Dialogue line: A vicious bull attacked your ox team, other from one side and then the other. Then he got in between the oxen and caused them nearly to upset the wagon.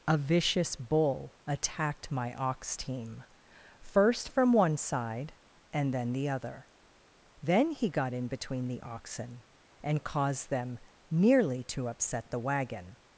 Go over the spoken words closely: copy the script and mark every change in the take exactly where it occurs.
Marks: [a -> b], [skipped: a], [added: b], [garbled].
A vicious bull attacked [your -> my] ox team, [other -> first] from one side and then the other. Then he got in between the oxen and caused them nearly to upset the wagon.